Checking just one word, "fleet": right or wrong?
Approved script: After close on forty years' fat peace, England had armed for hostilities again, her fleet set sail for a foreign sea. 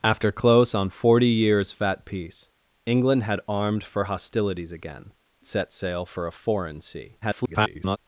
wrong